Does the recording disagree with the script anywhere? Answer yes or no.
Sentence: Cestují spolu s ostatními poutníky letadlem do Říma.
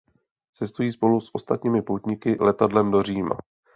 no